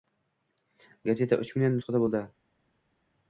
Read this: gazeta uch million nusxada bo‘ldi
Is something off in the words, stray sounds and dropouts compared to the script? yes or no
no